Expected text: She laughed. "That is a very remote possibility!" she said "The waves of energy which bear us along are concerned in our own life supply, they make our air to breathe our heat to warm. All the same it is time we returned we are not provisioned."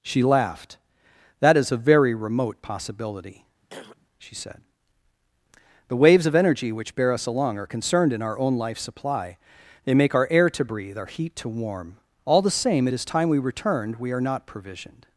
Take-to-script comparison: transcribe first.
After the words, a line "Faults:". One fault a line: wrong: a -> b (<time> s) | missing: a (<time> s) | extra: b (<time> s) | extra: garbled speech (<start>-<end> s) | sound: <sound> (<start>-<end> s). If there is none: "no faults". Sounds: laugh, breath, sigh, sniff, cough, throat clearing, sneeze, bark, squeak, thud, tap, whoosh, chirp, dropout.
She laughed. "That is a very remote possibility!" she said "The waves of energy which bear us along are concerned in our own life supply, they make our air to breathe our heat to warm. All the same it is time we returned we are not provisioned."
Faults:
sound: throat clearing (3.6-4.1 s)